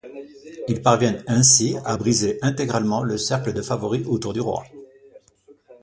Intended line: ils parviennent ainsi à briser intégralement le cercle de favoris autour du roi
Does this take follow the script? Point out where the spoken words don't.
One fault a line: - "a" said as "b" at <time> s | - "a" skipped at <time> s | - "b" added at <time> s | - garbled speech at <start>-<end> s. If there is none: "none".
none